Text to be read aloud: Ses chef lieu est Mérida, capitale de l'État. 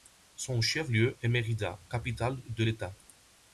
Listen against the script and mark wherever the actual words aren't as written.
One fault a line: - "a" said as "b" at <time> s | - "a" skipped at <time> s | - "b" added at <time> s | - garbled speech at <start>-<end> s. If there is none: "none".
- "Ses" said as "Son" at 0.3 s